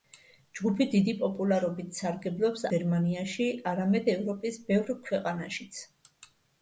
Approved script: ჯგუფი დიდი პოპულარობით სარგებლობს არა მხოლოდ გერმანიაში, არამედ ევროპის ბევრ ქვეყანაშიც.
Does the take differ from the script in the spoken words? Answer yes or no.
yes